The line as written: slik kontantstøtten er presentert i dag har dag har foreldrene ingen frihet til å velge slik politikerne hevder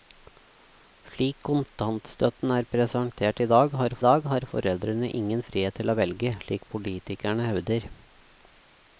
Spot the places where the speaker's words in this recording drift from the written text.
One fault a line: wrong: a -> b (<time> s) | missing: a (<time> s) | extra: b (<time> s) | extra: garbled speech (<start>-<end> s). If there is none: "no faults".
no faults